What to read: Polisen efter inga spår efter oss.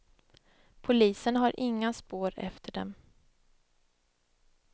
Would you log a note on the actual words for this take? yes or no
yes